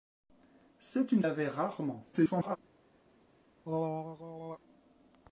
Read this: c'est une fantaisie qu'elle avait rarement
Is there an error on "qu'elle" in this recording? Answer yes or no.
yes